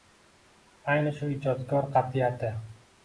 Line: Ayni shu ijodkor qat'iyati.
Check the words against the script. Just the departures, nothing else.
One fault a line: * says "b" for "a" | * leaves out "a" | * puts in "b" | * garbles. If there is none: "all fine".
all fine